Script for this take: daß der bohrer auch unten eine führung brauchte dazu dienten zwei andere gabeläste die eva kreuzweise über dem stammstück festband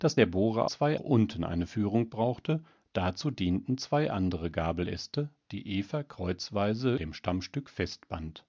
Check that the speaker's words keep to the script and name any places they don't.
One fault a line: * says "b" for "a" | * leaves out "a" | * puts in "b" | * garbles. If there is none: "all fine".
* says "zwei" for "auch"
* leaves out "über"